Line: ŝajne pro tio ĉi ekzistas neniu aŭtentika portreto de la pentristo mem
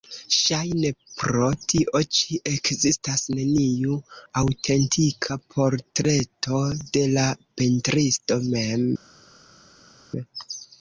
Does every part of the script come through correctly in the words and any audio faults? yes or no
yes